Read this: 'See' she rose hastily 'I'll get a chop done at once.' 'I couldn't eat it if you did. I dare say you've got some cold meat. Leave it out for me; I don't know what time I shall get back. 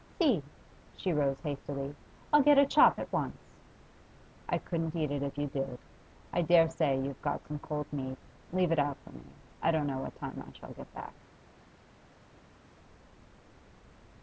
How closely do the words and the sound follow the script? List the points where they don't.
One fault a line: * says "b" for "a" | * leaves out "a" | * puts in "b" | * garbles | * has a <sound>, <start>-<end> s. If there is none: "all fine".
* leaves out "done"